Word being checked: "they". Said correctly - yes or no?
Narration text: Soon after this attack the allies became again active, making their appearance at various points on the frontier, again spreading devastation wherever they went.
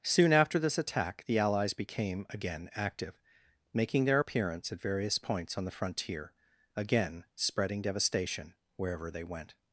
yes